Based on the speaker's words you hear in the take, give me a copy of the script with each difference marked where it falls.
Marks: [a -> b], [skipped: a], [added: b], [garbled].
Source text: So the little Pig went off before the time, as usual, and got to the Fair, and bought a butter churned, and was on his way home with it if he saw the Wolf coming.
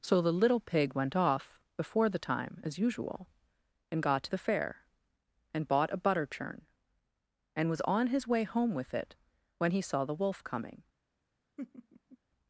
So the little Pig went off before the time, as usual, and got to the Fair, and bought a butter [churned, -> churn] and was on his way home with it [if -> when] he saw the Wolf coming.